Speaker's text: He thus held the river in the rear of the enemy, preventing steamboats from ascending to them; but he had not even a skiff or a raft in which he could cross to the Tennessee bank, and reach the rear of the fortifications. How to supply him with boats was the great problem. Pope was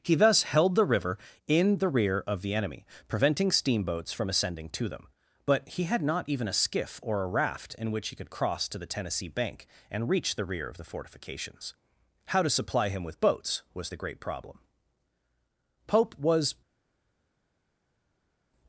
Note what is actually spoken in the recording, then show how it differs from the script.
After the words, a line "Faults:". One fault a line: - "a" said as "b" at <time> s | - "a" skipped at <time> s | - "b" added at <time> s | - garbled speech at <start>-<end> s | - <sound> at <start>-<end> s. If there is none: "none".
He thus held the river in the rear of the enemy, preventing steamboats from ascending to them; but he had not even a skiff or a raft in which he could cross to the Tennessee bank, and reach the rear of the fortifications. How to supply him with boats was the great problem. Pope was
Faults:
none